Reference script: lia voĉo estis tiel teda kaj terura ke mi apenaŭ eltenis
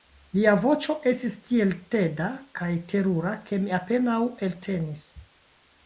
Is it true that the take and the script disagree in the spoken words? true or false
false